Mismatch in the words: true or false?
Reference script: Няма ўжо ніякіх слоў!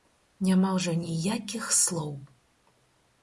false